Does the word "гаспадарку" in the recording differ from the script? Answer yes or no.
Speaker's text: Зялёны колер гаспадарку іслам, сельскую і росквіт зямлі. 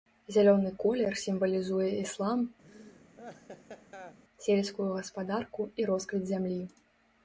yes